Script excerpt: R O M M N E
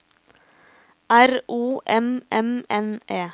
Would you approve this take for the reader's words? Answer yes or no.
yes